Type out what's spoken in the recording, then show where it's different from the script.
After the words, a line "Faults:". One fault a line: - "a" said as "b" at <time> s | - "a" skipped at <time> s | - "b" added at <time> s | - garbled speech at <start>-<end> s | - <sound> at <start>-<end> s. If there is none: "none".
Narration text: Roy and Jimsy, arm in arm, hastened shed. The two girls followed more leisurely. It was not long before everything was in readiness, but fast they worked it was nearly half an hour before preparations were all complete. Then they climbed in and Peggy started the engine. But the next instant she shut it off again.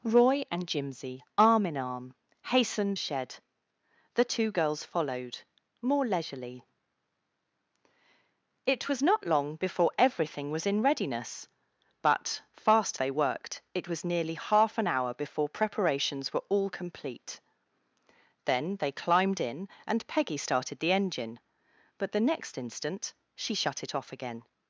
Roy and Jimsy, arm in arm, hastened shed. The two girls followed more leisurely. It was not long before everything was in readiness, but fast they worked it was nearly half an hour before preparations were all complete. Then they climbed in and Peggy started the engine. But the next instant she shut it off again.
Faults:
none